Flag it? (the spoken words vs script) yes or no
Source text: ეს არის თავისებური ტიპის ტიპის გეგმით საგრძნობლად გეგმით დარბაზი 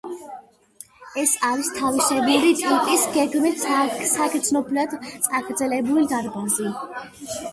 yes